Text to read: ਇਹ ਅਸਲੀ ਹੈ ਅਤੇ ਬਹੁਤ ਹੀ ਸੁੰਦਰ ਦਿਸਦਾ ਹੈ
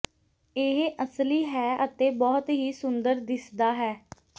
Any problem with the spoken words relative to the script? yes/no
no